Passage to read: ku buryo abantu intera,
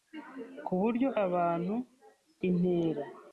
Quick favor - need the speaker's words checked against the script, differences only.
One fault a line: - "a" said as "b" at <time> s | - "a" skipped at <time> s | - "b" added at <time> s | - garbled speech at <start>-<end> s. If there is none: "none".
none